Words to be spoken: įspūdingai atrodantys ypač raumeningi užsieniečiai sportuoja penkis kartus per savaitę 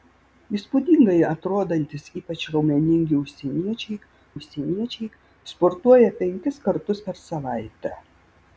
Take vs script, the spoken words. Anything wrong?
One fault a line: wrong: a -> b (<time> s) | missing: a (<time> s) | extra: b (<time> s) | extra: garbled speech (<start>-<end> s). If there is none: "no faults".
extra: užsieniečiai (4.3 s)